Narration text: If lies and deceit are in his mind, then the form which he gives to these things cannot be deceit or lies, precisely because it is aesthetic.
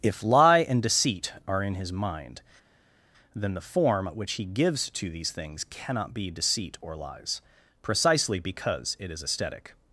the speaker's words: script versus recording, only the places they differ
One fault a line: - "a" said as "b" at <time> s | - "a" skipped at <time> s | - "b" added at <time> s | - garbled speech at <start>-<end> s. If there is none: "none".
- "lies" said as "lie" at 0.2 s